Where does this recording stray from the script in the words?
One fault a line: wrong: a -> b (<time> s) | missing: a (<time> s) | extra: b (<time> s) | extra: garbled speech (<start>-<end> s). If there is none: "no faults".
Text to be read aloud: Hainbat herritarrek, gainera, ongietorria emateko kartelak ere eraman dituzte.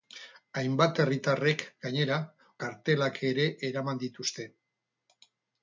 missing: ongietorria emateko (2.2 s)